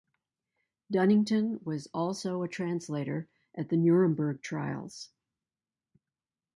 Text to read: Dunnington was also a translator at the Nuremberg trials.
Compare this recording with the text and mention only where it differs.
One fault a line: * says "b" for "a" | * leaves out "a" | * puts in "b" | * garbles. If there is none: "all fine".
all fine